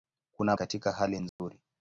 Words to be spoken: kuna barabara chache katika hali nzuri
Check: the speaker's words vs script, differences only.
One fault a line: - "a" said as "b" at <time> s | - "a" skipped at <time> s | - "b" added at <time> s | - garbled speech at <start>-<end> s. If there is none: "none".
- "barabara chache" skipped at 0.6 s